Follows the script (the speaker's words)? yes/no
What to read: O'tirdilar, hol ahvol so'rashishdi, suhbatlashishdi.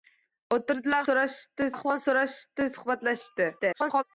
no